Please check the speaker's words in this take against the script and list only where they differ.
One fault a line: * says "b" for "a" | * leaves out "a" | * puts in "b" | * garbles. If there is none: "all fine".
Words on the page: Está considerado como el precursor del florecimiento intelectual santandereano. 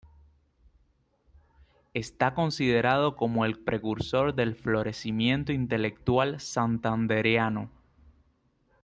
all fine